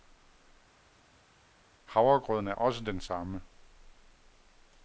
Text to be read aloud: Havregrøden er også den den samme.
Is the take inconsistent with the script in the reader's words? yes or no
yes